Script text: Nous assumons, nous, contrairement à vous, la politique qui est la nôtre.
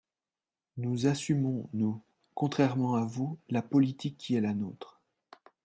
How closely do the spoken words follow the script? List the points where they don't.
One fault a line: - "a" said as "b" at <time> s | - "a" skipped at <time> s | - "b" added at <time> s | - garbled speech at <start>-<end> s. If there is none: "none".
none